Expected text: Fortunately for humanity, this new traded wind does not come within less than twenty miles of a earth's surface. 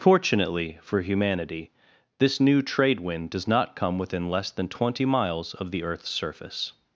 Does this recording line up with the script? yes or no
no